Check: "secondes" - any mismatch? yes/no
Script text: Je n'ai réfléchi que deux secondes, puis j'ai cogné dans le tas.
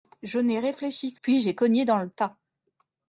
yes